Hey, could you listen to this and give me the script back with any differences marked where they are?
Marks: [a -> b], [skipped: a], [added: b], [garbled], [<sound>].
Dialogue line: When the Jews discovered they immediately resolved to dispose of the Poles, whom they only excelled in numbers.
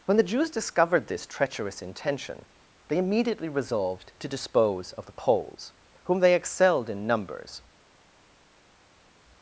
When the Jews discovered [added: this treacherous intention] they immediately resolved to dispose of the Poles, whom they [skipped: only] excelled in numbers.